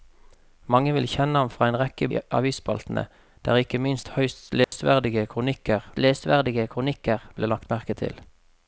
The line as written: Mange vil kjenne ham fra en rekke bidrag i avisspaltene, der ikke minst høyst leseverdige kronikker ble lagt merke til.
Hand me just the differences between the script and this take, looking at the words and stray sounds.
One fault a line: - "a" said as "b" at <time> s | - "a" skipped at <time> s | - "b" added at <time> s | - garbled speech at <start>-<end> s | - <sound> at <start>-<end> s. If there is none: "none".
- "bidrag" skipped at 2.1 s
- dropout at 4.6-4.7 s
- "leseverdige kronikker" added at 6.0 s